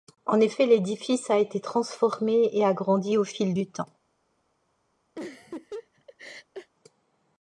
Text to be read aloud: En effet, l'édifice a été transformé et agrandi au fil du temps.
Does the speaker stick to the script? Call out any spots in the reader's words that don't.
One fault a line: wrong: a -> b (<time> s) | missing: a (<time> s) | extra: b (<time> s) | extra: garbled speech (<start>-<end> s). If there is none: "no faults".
no faults